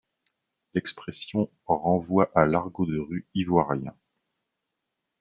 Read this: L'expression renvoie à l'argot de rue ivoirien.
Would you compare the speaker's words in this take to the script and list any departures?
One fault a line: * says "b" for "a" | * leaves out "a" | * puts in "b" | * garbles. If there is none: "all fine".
all fine